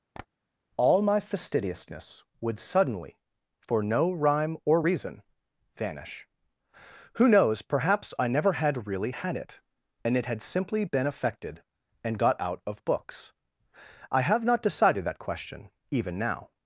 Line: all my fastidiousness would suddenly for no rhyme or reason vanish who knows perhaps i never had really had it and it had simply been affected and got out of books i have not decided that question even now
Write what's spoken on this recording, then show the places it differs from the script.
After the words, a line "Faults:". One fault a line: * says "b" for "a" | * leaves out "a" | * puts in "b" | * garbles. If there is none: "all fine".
all my fastidiousness would suddenly for no rhyme or reason vanish who knows perhaps i never had really had it and it had simply been affected and got out of books i have not decided that question even now
Faults:
all fine